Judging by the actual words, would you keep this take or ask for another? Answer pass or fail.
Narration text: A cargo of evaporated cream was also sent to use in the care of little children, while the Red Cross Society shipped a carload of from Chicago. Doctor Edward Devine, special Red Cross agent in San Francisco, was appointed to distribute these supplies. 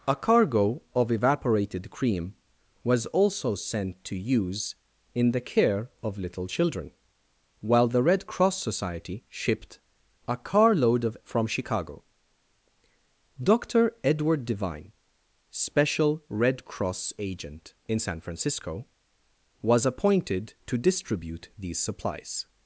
pass